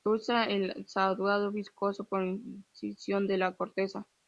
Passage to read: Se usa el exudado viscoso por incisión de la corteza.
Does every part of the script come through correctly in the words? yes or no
yes